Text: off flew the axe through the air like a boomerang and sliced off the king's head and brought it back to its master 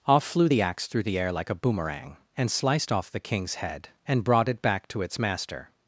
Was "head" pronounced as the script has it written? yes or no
yes